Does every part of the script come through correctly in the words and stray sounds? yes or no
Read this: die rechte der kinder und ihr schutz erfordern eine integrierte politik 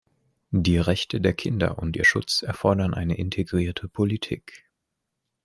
yes